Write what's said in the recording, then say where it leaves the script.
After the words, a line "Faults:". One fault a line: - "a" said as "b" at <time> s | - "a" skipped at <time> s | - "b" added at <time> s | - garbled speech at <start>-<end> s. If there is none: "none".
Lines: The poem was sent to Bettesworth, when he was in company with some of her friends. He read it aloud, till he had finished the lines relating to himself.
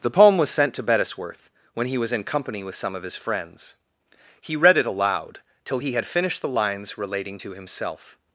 The poem was sent to Bettesworth, when he was in company with some of his friends. He read it aloud, till he had finished the lines relating to himself.
Faults:
- "her" said as "his" at 3.0 s